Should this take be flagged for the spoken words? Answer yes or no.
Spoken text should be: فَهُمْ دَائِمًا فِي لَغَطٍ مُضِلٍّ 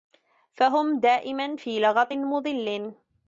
no